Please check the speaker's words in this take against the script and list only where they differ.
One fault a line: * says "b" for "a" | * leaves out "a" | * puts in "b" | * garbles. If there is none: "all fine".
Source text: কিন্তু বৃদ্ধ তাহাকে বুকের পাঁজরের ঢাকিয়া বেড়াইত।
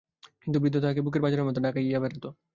* puts in "মতো"